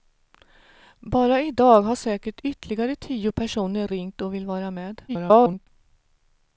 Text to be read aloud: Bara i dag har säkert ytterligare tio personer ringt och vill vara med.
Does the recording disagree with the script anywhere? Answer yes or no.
yes